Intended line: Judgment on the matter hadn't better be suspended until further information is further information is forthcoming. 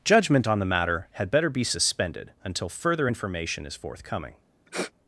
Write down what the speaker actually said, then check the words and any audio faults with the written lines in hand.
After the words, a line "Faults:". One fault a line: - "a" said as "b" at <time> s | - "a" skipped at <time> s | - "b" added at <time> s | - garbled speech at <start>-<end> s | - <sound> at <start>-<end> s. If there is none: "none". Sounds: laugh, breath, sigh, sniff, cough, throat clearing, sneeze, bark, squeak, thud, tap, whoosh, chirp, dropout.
Judgment on the matter had better be suspended until further information is forthcoming.
Faults:
- "hadn't" said as "had" at 1.1 s
- "further information is" skipped at 3.7 s
- sniff at 4.7-4.9 s